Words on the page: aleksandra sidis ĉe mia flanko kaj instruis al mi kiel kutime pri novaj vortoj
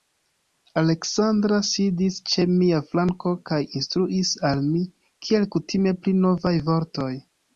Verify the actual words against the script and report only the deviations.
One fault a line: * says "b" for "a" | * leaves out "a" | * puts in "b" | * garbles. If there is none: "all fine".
all fine